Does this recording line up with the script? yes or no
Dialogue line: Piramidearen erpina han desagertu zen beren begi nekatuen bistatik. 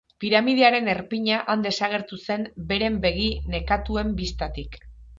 yes